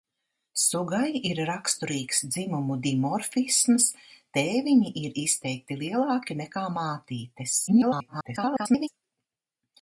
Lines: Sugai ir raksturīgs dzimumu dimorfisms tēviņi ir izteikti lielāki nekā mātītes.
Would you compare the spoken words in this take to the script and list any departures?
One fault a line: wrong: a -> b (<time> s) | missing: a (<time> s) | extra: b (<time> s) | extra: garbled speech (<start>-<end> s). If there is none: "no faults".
extra: garbled speech (7.7-8.9 s)